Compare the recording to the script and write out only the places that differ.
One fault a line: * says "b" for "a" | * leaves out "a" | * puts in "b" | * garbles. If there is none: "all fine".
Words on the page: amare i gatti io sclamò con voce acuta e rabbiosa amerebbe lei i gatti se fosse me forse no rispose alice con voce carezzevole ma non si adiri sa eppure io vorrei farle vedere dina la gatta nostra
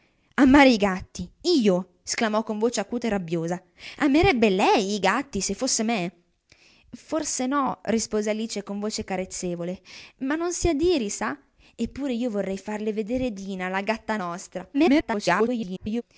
* garbles